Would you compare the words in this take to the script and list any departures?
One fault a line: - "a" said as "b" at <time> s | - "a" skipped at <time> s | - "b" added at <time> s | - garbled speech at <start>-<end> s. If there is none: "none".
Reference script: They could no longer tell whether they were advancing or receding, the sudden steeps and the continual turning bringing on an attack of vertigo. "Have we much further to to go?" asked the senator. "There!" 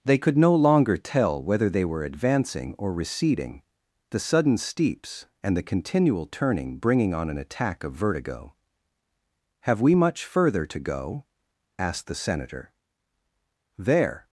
- "to" skipped at 10.8 s